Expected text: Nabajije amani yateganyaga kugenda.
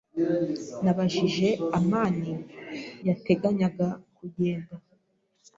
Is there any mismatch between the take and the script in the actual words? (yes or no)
no